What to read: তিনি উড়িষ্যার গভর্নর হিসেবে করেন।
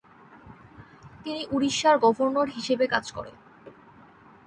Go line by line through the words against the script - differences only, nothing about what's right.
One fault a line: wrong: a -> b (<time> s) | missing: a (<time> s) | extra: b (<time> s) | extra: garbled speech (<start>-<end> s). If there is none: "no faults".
extra: কাজ (2.9 s)